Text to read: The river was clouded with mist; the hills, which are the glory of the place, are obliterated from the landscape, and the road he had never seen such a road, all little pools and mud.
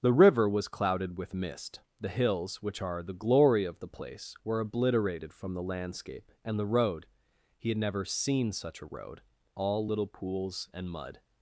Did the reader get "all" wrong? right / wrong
right